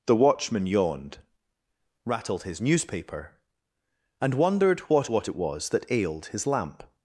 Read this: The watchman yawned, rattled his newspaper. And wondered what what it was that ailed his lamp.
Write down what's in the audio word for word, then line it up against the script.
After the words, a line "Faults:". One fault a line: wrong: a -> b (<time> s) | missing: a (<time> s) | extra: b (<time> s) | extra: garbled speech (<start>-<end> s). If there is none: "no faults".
The watchman yawned, rattled his newspaper. And wondered what what it was that ailed his lamp.
Faults:
no faults